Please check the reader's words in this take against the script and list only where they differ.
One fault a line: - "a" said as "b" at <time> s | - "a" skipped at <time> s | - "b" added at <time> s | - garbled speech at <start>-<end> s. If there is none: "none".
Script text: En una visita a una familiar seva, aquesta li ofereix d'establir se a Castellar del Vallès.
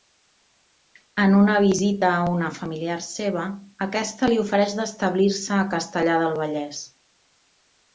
none